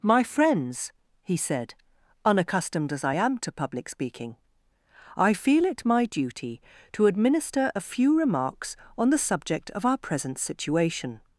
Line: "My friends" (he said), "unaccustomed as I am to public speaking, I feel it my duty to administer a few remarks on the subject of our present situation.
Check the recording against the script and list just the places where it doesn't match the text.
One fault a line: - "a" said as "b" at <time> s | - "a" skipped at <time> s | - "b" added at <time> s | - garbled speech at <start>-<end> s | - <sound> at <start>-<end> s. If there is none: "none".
none